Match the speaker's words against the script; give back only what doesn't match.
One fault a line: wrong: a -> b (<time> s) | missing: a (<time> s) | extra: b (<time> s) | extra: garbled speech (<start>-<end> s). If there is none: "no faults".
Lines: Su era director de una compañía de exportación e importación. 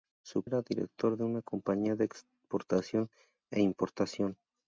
no faults